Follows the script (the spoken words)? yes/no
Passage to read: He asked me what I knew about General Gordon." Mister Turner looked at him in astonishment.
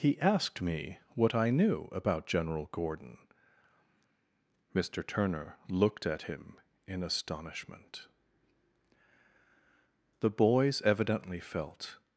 no